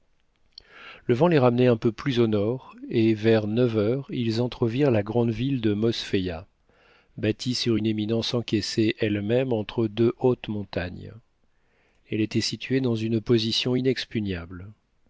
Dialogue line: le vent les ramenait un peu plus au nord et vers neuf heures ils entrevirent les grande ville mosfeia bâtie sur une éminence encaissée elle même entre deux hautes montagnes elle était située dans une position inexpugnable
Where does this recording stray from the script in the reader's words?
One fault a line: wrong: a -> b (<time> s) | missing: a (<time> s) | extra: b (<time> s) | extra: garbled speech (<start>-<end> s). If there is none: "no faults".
wrong: les -> la (4.9 s)
extra: de (5.6 s)